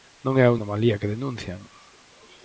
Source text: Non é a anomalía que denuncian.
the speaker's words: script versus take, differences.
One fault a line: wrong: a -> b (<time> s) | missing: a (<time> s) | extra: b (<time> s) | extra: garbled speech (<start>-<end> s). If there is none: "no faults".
no faults